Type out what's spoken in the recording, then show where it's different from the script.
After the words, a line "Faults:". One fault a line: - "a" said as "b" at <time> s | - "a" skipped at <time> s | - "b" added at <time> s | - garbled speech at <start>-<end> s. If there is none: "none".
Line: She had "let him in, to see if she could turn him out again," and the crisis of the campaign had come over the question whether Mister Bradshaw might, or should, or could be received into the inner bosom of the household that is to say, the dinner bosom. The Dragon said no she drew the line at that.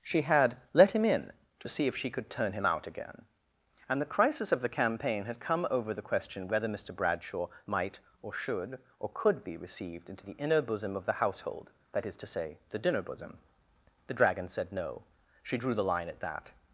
She had "let him in, to see if she could turn him out again," and the crisis of the campaign had come over the question whether Mister Bradshaw might, or should, or could be received into the inner bosom of the household that is to say, the dinner bosom. The Dragon said no she drew the line at that.
Faults:
none